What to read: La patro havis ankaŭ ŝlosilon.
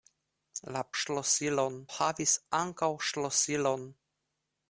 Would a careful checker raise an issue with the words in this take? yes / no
yes